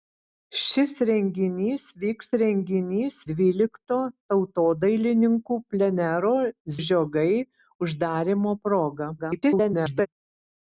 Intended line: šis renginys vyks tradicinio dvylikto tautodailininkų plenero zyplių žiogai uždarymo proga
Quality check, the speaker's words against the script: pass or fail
fail